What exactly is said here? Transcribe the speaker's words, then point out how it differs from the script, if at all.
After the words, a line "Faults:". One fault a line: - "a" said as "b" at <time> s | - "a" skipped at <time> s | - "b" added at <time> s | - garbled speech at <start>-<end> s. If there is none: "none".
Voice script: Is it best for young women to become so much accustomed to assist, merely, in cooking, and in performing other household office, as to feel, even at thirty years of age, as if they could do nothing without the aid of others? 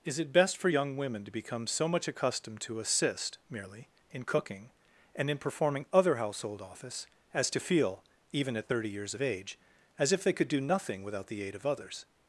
Is it best for young women to become so much accustomed to assist, merely, in cooking, and in performing other household office, as to feel, even at thirty years of age, as if they could do nothing without the aid of others?
Faults:
none